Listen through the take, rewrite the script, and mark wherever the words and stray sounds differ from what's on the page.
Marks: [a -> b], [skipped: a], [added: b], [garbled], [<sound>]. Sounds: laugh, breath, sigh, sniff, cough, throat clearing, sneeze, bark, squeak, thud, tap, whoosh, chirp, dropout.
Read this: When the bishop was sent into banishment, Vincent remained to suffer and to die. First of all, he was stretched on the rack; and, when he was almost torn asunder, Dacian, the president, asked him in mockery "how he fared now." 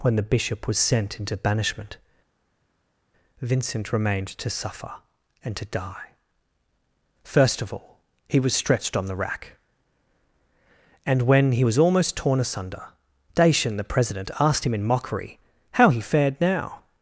When the bishop was sent into banishment, Vincent remained to suffer and to die. First of all, he was stretched on the rack; and, when he was almost torn asunder, Dacian, the president, asked him in mockery "how he fared now."